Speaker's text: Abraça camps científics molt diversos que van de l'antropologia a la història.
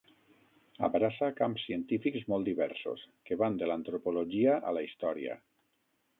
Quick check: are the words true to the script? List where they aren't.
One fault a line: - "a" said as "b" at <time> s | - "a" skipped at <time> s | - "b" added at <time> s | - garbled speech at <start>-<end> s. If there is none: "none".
none